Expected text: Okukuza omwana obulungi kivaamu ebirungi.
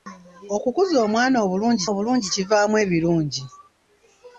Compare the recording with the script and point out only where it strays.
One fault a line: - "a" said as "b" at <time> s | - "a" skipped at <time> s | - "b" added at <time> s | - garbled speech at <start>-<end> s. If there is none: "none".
- "obulungi" added at 1.9 s